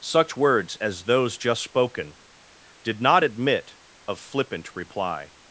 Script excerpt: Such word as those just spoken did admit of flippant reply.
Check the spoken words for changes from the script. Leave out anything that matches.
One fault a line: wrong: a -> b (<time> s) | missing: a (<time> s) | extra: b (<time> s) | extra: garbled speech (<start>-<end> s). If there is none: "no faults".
wrong: word -> words (0.3 s)
extra: not (3.0 s)